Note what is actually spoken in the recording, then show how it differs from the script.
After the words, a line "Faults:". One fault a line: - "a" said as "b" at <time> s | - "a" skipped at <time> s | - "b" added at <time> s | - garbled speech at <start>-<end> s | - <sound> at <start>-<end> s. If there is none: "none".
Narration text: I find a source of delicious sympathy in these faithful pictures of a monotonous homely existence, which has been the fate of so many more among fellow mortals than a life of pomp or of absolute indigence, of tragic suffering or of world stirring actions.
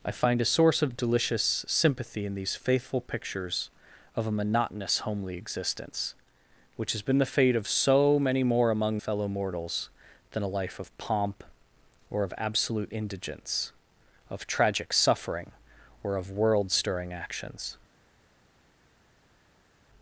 I find a source of delicious sympathy in these faithful pictures of a monotonous homely existence, which has been the fate of so many more among fellow mortals than a life of pomp or of absolute indigence, of tragic suffering or of world stirring actions.
Faults:
none